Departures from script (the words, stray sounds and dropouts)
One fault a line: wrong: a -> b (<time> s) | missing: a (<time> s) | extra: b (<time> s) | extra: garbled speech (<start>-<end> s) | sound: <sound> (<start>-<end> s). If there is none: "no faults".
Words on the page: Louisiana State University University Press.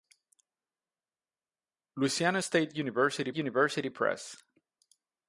no faults